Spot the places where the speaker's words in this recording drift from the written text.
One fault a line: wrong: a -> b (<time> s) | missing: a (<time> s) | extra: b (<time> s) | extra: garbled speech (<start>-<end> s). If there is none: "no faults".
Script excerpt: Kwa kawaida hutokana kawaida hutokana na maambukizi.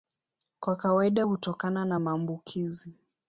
missing: kawaida hutokana (1.8 s)